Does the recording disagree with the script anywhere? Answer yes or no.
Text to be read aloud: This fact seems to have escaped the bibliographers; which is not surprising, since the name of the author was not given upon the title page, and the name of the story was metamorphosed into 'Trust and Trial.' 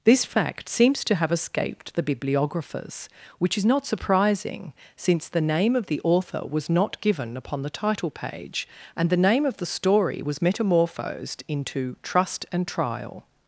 no